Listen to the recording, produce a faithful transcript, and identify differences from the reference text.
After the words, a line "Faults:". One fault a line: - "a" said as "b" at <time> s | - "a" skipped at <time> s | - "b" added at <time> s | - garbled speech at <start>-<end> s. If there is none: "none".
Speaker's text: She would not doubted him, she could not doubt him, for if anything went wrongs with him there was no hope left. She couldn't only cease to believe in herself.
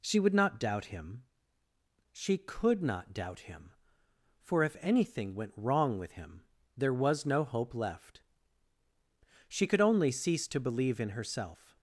She would not doubt him, she could not doubt him, for if anything went wrong with him there was no hope left. She could only cease to believe in herself.
Faults:
- "doubted" said as "doubt" at 0.6 s
- "wrongs" said as "wrong" at 5.5 s
- "couldn't" said as "could" at 9.7 s